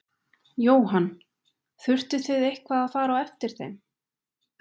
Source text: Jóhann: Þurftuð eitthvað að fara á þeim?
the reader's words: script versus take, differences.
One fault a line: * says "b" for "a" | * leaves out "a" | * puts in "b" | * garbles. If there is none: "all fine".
* puts in "þið"
* puts in "eftir"